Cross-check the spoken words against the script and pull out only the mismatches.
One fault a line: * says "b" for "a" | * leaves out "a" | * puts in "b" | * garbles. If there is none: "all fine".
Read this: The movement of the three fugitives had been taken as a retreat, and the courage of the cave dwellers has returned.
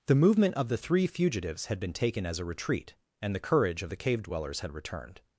* says "had" for "has"